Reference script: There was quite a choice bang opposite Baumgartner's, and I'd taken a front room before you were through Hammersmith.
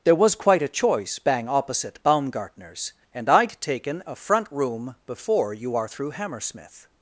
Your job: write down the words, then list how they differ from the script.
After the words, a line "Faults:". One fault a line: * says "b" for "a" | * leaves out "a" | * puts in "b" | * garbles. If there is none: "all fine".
There was quite a choice bang opposite Baumgartner's, and I'd taken a front room before you are through Hammersmith.
Faults:
* says "are" for "were"